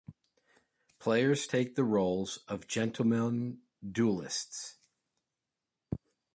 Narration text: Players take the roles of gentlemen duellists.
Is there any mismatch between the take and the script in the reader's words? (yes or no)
no